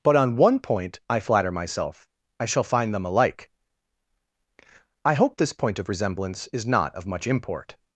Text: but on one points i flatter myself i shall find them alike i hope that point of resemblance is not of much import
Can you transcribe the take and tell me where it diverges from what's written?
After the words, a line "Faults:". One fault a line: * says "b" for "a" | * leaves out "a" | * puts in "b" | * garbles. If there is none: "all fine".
but on one point i flatter myself i shall find them alike i hope this point of resemblance is not of much import
Faults:
* says "point" for "points"
* says "this" for "that"